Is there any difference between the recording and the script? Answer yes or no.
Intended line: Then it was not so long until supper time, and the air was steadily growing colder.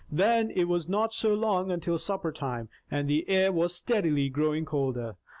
no